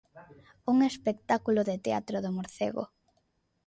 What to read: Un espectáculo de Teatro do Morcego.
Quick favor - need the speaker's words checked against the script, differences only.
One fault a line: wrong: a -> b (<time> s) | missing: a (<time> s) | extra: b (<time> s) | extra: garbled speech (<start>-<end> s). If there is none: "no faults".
no faults